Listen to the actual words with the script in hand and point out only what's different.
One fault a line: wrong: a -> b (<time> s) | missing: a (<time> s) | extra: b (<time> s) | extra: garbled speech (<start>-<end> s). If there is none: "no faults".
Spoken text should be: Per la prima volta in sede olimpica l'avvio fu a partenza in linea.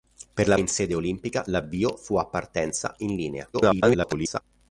missing: prima volta (0.6 s)
extra: garbled speech (3.5-4.4 s)